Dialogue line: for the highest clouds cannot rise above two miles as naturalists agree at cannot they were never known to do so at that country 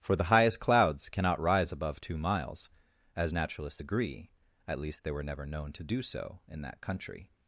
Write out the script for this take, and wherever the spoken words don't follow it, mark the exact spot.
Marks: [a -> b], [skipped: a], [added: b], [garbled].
for the highest clouds cannot rise above two miles as naturalists agree at [cannot -> least] they were never known to do so [at -> in] that country